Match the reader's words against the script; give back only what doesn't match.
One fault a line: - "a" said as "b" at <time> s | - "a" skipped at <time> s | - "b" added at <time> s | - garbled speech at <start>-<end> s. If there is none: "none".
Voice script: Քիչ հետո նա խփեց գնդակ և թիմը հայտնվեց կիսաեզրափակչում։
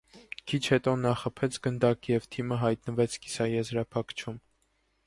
none